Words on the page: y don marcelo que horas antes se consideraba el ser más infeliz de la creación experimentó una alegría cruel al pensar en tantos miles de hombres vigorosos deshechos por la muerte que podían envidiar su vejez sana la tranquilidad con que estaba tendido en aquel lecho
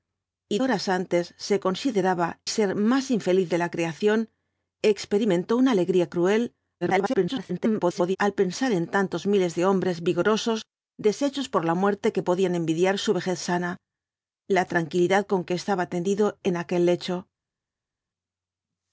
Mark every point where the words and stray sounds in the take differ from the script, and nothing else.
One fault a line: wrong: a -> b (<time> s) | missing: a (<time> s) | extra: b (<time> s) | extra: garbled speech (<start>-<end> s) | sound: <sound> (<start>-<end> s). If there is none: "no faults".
missing: don marcelo que (0.6 s)
missing: el (2.3 s)
extra: garbled speech (6.8-8.2 s)